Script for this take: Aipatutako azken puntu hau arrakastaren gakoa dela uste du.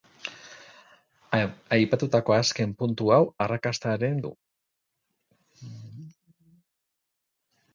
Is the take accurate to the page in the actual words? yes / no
no